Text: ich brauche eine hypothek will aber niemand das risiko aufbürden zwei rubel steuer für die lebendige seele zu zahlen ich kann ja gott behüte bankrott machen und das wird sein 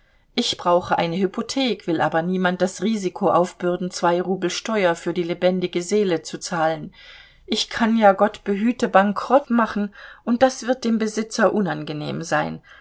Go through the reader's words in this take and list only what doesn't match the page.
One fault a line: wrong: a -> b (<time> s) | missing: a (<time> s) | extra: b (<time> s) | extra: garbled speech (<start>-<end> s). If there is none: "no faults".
extra: dem besitzer unangenehm (10.8 s)